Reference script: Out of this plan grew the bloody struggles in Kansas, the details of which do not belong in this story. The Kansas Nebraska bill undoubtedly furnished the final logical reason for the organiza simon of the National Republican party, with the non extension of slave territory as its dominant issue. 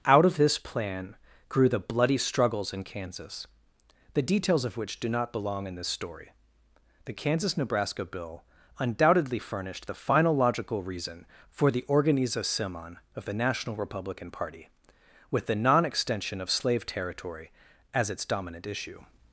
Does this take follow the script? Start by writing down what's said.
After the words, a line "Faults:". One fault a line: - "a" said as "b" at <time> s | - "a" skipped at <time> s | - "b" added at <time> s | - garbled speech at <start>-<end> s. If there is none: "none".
Out of this plan grew the bloody struggles in Kansas, the details of which do not belong in this story. The Kansas Nebraska bill undoubtedly furnished the final logical reason for the organiza simon of the National Republican party, with the non extension of slave territory as its dominant issue.
Faults:
none